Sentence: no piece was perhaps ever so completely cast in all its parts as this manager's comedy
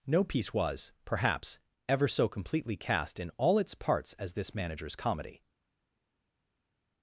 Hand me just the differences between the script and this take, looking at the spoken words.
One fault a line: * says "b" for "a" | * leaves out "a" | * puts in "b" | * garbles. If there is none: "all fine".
all fine